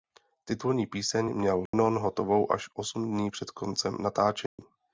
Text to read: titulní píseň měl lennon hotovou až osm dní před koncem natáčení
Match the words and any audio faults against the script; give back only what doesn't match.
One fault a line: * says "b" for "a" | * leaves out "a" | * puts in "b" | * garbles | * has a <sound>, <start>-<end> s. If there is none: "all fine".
* has a dropout, 1.7-1.7 s
* has a dropout, 4.5-4.6 s